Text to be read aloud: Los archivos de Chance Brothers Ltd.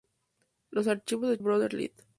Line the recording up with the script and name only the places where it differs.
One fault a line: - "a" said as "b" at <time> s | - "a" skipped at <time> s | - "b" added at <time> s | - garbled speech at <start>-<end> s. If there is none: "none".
- "Chance" skipped at 1.4 s